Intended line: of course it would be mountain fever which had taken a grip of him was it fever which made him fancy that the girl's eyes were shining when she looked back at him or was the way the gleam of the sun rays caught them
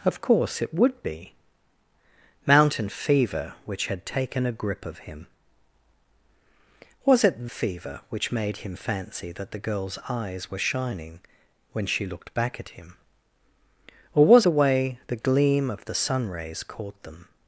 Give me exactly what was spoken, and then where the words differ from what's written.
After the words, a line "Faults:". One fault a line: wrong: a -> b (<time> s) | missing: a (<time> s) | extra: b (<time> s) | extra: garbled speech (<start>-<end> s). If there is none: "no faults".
of course it would be mountain fever which had taken a grip of him was it fever which made him fancy that the girl's eyes were shining when she looked back at him or was the way the gleam of the sun rays caught them
Faults:
no faults